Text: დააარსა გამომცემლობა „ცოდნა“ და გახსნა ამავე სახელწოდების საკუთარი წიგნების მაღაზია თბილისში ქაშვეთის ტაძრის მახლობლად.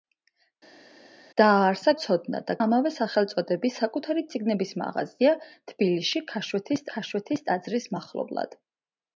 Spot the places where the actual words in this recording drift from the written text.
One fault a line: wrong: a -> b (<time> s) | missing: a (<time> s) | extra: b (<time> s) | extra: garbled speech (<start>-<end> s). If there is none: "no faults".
missing: გამომცემლობა (1.9 s)
missing: გახსნა (2.6 s)
extra: ქაშვეთის (6.9 s)